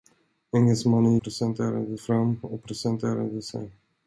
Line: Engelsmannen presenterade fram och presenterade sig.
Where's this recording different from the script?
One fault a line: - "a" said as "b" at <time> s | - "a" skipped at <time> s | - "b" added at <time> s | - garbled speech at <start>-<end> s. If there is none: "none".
none